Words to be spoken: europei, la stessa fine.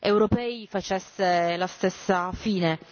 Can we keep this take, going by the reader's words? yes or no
no